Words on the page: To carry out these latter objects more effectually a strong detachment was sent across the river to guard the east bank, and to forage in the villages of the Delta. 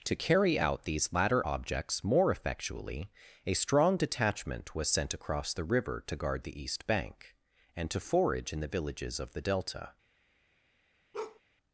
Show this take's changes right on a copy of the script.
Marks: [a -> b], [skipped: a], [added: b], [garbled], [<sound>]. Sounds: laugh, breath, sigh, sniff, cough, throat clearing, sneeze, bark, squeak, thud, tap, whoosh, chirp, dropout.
To carry out these latter objects more effectually a strong detachment was sent across the river to guard the east bank, and to forage in the villages of the Delta. [bark]